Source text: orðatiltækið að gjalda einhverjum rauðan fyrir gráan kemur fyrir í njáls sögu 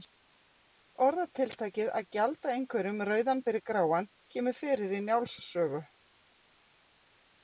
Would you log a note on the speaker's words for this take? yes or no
no